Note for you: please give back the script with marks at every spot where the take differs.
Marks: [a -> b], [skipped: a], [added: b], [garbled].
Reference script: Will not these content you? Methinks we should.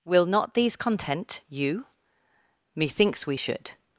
Will not these content you? Methinks we should.